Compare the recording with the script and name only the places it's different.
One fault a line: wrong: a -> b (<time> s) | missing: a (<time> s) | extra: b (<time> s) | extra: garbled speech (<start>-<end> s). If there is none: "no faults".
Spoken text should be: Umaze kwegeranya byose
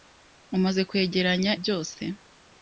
no faults